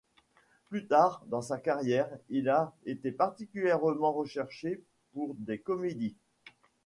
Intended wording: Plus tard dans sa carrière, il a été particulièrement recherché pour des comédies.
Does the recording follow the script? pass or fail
pass